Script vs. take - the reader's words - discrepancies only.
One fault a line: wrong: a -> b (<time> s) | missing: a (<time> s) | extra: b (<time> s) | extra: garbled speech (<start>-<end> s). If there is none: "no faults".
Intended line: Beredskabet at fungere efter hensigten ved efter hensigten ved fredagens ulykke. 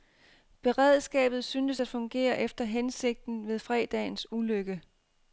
extra: syntes (1.4 s)
missing: efter hensigten ved (3.6 s)